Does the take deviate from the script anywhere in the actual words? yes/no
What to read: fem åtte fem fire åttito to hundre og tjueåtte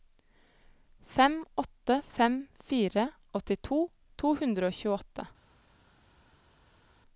no